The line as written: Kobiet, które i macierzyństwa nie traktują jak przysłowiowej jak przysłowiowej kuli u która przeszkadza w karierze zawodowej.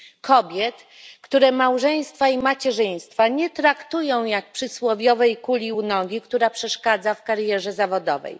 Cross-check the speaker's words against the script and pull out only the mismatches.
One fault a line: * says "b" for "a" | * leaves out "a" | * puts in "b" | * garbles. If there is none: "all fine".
* puts in "małżeństwa"
* leaves out "jak przysłowiowej"
* puts in "nogi"